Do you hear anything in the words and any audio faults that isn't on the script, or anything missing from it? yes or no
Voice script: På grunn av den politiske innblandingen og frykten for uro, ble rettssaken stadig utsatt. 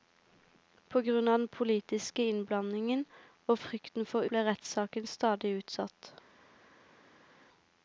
yes